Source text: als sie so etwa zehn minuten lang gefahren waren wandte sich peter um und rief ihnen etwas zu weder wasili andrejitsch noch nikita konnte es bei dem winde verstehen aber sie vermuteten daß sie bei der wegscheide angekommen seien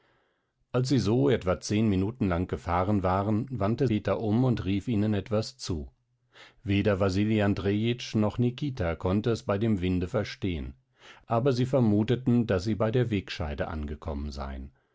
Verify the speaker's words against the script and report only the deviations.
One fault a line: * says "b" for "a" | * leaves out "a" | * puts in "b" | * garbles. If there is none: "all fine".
* leaves out "sich"